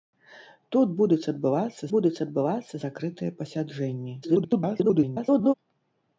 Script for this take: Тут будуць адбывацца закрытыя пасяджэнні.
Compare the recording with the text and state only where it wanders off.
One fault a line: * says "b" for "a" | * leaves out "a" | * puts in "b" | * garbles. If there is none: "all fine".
* puts in "будуць адбывацца"
* garbles